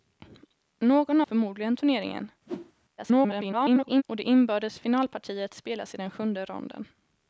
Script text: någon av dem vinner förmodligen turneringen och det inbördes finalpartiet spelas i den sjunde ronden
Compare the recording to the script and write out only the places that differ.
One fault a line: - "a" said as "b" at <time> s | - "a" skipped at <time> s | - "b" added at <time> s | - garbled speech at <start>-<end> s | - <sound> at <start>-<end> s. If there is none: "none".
- "av dem vinner" skipped at 1.2 s
- whoosh at 2.5-2.7 s
- garbled speech at 3.0-4.0 s